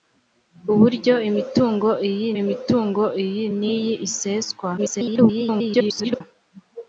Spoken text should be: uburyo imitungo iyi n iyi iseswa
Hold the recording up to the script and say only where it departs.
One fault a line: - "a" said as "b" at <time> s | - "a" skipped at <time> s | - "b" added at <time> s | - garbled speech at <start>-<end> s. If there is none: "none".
- "imitungo iyi" added at 2.4 s
- garbled speech at 4.8-6.2 s